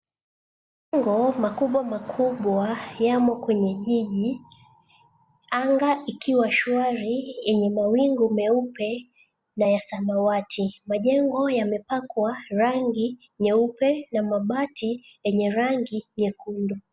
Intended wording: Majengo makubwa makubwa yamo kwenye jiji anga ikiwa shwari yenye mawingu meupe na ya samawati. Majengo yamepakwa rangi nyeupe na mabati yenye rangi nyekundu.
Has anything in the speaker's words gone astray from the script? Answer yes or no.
no